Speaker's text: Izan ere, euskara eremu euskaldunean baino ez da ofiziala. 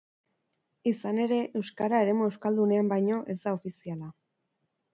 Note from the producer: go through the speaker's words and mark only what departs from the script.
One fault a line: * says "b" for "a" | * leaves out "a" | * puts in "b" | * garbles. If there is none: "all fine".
all fine